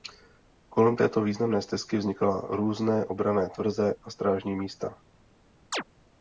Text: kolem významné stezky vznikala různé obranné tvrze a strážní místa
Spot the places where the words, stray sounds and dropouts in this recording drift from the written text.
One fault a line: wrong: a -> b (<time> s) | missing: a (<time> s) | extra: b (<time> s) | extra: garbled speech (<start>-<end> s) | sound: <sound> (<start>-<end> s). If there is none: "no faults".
extra: této (0.9 s)
sound: chirp (5.7-5.8 s)